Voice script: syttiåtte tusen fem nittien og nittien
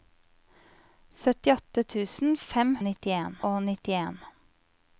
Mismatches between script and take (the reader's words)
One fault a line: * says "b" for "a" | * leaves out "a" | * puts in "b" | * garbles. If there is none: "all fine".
all fine